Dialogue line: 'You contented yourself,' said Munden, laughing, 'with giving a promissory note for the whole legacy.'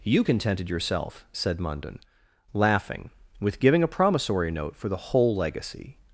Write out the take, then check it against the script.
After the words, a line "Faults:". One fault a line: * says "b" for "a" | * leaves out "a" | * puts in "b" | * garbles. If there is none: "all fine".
'You contented yourself,' said Munden, laughing, 'with giving a promissory note for the whole legacy.'
Faults:
all fine